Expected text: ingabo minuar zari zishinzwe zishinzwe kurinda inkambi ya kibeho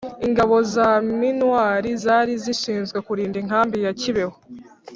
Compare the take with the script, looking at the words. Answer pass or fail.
fail